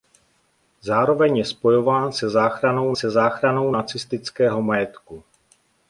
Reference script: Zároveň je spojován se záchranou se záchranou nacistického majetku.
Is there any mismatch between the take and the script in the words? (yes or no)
no